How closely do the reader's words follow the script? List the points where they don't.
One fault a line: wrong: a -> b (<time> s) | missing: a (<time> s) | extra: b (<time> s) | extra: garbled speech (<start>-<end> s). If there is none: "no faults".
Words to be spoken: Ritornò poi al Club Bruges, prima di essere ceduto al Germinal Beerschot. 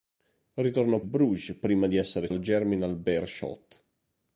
missing: poi al Club (1.0 s)
missing: ceduto (2.3 s)